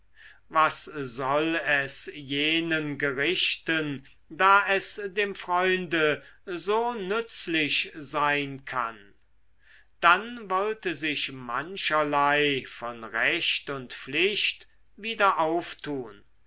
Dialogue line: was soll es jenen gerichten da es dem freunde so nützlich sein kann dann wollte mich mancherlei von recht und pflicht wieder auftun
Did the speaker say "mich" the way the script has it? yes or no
no